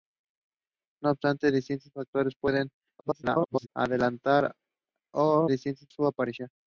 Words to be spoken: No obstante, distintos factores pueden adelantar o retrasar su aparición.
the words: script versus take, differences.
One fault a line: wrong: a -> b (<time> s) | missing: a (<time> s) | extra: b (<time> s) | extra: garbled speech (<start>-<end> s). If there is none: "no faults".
extra: garbled speech (3.0-3.7 s)
wrong: retrasar -> distintos (5.5 s)